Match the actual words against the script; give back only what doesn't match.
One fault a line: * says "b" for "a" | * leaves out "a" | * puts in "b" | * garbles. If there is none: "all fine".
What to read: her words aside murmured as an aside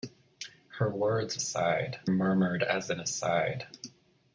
all fine